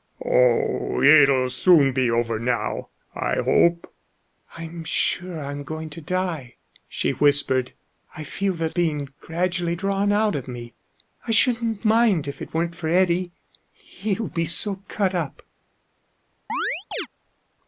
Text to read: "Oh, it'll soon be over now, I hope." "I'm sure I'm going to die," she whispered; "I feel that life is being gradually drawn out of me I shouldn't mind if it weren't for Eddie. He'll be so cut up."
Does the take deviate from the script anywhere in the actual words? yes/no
yes